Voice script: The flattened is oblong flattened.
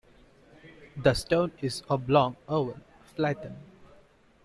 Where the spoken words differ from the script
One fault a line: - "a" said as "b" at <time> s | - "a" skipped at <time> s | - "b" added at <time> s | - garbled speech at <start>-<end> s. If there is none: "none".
- "flattened" said as "stone" at 1.1 s
- "oval" added at 2.5 s